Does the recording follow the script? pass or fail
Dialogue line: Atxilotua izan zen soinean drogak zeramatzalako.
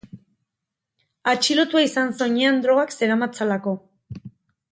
fail